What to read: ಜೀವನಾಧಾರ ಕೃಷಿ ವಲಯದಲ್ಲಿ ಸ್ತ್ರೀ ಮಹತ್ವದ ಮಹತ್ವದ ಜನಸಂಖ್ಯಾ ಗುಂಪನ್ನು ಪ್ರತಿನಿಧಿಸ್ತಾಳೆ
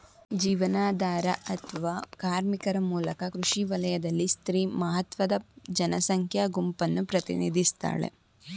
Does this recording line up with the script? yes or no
no